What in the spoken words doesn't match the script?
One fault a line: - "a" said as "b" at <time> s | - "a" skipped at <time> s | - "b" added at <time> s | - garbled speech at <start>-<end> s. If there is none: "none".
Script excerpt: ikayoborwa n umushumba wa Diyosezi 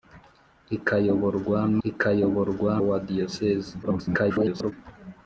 - "umushumba" said as "ikayoborwa" at 1.9 s
- garbled speech at 3.8-4.7 s